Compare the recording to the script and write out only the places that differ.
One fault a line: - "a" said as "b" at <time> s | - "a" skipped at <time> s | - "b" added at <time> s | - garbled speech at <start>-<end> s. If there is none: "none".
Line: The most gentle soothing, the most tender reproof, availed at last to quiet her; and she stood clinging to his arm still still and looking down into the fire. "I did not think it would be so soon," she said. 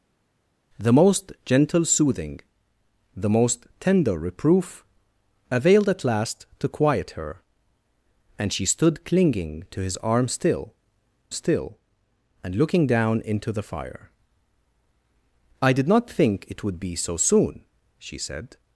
none